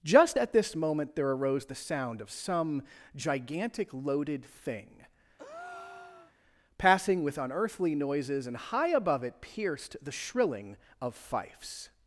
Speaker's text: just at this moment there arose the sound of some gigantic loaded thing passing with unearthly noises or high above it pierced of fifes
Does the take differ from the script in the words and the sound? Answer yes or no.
yes